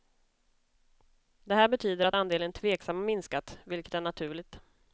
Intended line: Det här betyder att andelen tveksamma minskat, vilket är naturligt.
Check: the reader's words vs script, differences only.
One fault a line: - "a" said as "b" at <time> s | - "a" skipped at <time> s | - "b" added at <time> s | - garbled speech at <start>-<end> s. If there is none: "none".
none